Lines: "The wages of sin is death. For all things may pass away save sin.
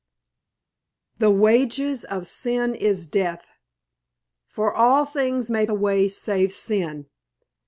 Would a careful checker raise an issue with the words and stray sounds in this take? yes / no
yes